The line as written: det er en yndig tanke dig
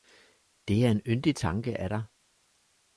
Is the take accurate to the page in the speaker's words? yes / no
no